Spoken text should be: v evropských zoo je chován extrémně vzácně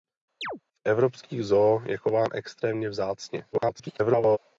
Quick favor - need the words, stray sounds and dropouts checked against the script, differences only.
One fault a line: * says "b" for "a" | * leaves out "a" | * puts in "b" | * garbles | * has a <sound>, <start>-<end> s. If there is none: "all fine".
* has a chirp, 0.4-0.6 s
* garbles